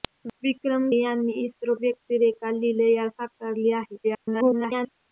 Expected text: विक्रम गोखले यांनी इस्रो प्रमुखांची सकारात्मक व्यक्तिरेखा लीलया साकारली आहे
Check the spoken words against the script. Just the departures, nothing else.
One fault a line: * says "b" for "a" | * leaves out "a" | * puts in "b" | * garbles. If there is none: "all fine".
* leaves out "गोखले"
* leaves out "प्रमुखांची सकारात्मक"
* garbles